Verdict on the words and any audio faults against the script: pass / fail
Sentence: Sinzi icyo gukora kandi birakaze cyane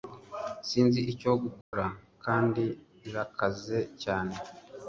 fail